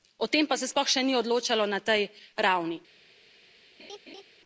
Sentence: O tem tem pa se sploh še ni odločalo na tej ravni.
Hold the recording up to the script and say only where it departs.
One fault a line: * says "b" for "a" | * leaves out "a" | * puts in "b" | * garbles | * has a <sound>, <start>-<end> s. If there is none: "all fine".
* leaves out "tem"
* has a laugh, 3.8-4.2 s